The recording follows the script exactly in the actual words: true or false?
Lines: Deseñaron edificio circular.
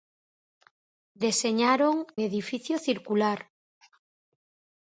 true